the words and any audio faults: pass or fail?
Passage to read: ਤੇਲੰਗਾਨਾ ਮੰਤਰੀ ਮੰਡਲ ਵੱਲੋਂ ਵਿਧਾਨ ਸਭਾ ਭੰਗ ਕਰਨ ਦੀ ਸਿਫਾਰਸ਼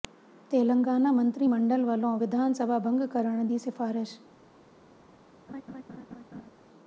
fail